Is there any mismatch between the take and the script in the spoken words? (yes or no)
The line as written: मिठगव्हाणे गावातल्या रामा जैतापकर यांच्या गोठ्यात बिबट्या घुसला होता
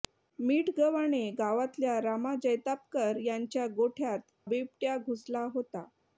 no